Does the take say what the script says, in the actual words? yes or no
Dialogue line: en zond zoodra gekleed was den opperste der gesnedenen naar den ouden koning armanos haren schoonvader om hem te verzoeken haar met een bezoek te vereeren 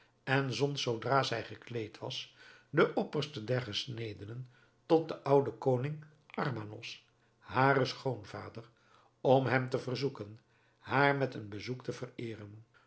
no